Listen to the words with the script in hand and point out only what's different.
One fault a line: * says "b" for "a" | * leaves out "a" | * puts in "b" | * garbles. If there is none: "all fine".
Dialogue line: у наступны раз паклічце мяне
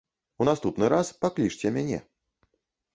all fine